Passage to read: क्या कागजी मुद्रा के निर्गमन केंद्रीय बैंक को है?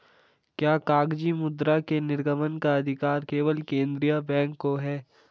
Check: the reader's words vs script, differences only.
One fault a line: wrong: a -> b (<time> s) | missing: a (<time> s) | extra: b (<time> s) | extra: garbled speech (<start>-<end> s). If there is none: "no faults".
extra: का अधिकार केवल (2.6 s)